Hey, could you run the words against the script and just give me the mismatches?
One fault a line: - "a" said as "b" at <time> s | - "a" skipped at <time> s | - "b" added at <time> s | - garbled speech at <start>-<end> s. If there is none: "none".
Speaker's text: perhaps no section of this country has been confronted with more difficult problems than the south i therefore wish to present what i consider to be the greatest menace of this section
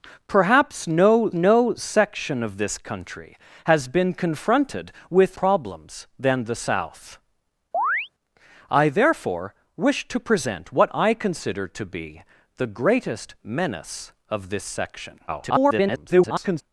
- "no" added at 1.3 s
- "more difficult" skipped at 5.4 s
- garbled speech at 15.3-16.6 s